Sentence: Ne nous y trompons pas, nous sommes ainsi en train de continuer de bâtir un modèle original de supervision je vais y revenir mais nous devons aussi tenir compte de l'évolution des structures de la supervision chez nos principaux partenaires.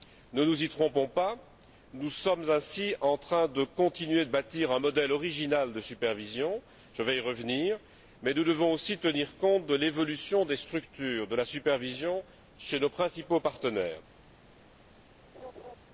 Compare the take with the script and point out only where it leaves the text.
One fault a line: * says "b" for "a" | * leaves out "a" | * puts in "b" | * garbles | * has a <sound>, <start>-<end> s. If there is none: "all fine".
* has a laugh, 15.3-15.8 s